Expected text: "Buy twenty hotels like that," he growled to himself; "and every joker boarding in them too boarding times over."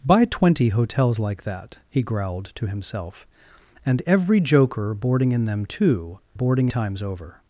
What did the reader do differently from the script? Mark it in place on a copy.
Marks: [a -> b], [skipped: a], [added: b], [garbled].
"Buy twenty hotels like that," he growled to himself; "and every joker boarding in them too boarding times over."